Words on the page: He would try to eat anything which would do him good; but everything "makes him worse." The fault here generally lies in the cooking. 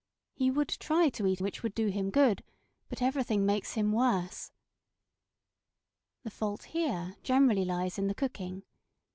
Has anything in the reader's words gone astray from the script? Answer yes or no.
yes